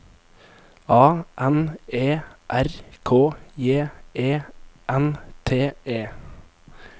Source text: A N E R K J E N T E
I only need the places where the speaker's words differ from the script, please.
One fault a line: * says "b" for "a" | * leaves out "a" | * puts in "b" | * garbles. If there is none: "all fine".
all fine